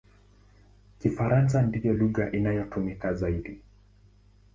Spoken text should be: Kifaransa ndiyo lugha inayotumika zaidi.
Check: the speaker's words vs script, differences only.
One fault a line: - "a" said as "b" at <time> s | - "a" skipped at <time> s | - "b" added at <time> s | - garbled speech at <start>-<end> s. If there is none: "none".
none